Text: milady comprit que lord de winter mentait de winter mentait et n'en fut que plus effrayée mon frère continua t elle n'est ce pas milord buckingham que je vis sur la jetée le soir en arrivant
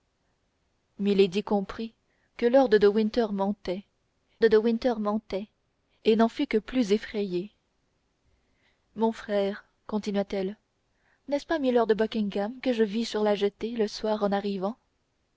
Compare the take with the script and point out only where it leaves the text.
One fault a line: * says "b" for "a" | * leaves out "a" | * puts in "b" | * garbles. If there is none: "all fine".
all fine